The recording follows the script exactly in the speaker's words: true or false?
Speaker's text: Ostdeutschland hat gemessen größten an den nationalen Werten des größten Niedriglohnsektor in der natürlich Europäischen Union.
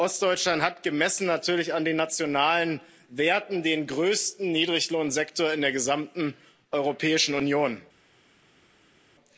false